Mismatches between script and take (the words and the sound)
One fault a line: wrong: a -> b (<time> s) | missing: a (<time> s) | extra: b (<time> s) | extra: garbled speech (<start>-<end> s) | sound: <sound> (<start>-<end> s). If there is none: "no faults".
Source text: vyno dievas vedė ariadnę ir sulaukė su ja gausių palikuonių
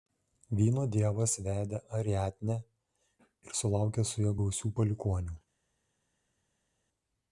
no faults